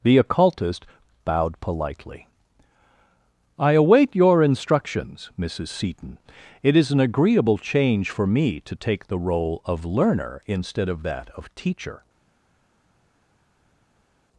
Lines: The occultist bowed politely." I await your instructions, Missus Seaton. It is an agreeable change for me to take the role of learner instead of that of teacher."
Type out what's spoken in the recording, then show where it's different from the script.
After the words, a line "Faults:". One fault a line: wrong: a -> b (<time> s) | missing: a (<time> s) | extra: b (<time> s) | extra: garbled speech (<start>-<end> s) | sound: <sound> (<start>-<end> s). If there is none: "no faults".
The occultist bowed politely." I await your instructions, Missus Seaton. It is an agreeable change for me to take the role of learner instead of that of teacher."
Faults:
no faults